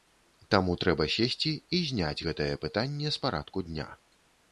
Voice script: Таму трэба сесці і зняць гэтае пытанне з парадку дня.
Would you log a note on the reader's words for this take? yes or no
no